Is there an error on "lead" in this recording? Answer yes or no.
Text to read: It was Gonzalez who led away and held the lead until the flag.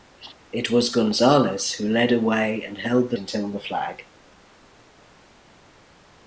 yes